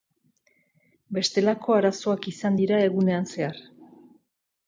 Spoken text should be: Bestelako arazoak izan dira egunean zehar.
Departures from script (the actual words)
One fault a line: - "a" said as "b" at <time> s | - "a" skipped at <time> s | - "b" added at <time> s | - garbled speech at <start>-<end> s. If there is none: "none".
none